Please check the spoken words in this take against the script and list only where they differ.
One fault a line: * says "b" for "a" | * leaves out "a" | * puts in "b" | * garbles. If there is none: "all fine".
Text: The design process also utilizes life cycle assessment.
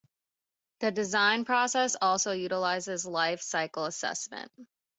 all fine